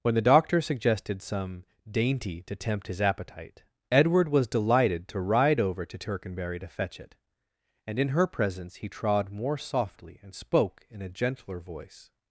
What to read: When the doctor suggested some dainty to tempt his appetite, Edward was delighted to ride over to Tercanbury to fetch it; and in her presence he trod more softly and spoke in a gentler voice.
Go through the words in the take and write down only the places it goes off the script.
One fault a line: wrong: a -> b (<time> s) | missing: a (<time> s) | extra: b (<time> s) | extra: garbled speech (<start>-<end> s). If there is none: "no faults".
no faults